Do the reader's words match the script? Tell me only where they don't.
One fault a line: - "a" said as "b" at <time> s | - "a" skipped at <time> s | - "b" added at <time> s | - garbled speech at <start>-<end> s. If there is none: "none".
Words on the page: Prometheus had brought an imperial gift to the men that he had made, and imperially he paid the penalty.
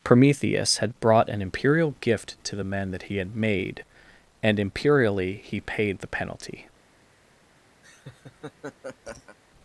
none